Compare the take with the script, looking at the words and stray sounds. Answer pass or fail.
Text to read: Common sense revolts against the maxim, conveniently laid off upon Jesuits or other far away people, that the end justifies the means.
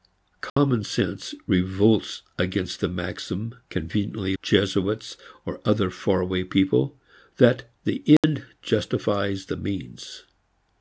fail